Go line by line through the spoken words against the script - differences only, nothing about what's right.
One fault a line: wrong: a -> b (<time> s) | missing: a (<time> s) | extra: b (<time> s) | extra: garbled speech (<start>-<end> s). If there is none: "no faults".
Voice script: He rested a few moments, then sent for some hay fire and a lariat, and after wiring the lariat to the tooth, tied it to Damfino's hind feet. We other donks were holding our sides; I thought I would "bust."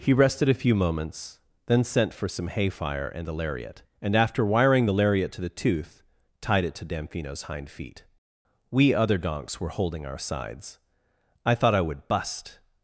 no faults